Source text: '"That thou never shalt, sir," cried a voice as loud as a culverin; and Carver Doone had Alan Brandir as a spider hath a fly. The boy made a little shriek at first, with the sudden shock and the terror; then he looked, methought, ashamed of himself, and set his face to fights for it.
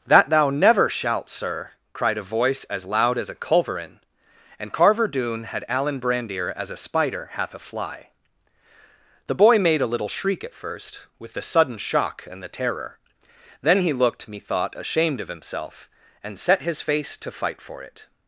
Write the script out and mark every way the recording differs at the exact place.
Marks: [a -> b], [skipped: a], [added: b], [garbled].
'"That thou never shalt, sir," cried a voice as loud as a culverin; and Carver Doone had Alan Brandir as a spider hath a fly. The boy made a little shriek at first, with the sudden shock and the terror; then he looked, methought, ashamed of himself, and set his face to [fights -> fight] for it.